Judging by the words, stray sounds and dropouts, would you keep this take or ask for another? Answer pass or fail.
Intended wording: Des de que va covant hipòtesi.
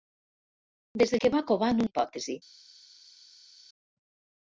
pass